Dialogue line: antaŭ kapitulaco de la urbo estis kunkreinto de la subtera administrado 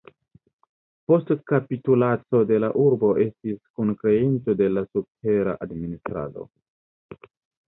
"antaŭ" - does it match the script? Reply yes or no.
no